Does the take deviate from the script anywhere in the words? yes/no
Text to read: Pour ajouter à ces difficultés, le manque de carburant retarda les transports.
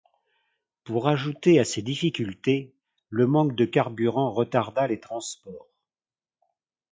no